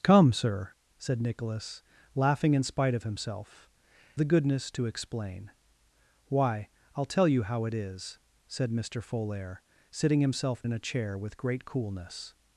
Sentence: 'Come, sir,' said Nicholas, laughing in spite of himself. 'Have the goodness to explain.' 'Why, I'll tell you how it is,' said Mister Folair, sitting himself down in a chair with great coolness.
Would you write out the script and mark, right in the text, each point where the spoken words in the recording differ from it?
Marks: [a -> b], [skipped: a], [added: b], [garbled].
'Come, sir,' said Nicholas, laughing in spite of himself. [skipped: 'Have] the goodness to explain.' 'Why, I'll tell you how it is,' said Mister Folair, sitting himself [skipped: down] in a chair with great coolness.